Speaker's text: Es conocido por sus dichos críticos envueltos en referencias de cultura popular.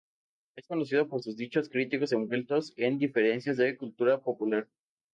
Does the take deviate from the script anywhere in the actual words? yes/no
no